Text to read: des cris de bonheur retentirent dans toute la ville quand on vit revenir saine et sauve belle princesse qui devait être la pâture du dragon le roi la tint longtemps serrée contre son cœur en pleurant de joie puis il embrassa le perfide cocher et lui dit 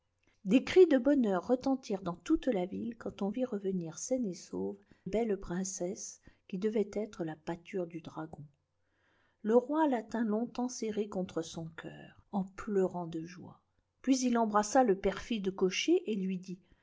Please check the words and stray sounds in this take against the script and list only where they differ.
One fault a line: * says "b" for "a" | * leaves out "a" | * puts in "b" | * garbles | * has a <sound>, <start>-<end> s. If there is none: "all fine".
all fine